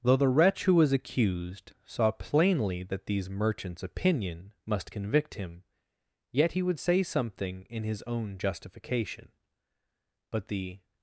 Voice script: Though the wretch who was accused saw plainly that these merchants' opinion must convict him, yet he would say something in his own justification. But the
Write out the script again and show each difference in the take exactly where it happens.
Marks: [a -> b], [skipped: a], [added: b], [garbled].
Though the wretch who was accused saw plainly that these merchants' opinion must convict him, yet he would say something in his own justification. But the